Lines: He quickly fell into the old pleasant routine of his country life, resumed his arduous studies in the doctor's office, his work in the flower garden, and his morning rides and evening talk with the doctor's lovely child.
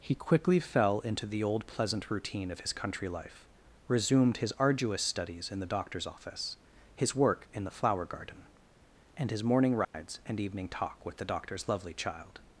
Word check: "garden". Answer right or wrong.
right